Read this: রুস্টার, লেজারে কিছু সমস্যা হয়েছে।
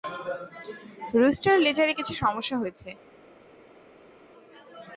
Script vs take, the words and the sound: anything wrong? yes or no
no